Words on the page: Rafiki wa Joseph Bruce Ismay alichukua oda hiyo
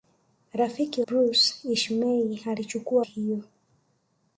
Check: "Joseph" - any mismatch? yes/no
yes